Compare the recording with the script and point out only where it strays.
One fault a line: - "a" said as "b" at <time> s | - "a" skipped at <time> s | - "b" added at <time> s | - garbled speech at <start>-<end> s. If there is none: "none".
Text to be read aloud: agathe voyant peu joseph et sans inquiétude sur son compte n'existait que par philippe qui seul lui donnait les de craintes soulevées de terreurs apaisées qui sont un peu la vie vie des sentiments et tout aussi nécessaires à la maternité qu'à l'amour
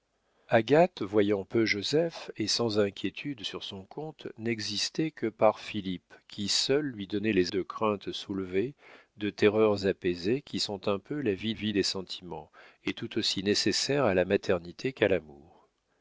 none